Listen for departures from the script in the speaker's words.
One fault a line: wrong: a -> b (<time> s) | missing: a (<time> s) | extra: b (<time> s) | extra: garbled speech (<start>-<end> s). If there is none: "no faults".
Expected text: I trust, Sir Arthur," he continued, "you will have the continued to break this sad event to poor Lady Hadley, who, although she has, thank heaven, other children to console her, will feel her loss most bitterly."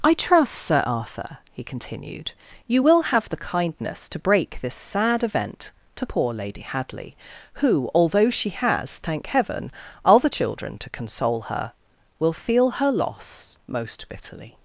wrong: continued -> kindness (3.4 s)